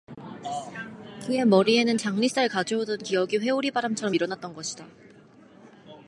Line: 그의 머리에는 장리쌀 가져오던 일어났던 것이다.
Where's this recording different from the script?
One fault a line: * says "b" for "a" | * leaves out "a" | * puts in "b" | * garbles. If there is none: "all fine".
* puts in "기억이 회오리바람처럼"